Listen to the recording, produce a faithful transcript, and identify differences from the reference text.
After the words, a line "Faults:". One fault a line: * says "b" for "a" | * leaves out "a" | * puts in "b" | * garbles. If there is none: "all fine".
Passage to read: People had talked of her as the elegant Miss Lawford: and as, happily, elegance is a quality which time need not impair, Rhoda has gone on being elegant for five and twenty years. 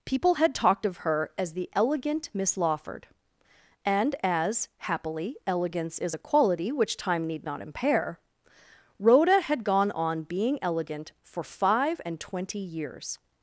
People had talked of her as the elegant Miss Lawford: and as, happily, elegance is a quality which time need not impair, Rhoda had gone on being elegant for five and twenty years.
Faults:
* says "had" for "has"